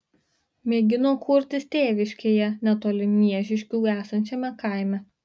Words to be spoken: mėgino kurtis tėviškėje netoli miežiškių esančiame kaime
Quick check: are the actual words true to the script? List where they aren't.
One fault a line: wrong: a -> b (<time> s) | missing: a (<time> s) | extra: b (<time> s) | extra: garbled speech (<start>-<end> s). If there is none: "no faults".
no faults